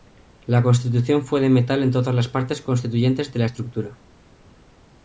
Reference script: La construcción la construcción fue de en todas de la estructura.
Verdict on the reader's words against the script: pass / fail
fail